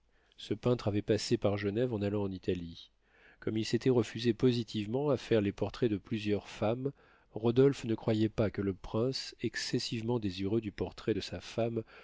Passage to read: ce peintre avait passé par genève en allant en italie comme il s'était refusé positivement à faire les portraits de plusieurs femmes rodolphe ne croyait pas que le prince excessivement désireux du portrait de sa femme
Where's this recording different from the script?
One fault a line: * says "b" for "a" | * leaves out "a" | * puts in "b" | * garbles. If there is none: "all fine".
all fine